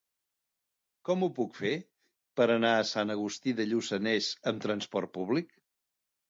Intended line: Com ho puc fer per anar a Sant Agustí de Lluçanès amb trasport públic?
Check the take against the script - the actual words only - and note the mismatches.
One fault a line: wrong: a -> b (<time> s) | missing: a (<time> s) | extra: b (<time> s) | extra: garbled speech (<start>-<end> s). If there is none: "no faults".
no faults